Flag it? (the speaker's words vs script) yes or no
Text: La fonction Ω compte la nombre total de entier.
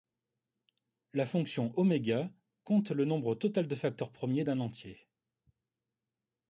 yes